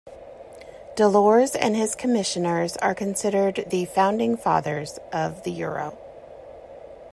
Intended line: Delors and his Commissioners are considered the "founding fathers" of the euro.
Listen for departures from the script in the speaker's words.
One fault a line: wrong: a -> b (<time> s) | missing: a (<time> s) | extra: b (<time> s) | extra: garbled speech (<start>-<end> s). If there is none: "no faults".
no faults